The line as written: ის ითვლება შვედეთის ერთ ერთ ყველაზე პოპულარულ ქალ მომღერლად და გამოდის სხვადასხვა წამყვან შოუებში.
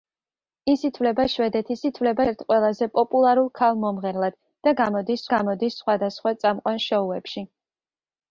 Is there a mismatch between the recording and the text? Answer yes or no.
yes